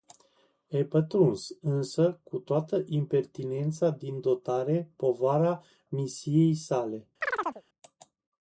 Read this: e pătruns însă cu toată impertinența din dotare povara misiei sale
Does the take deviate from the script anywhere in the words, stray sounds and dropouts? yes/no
yes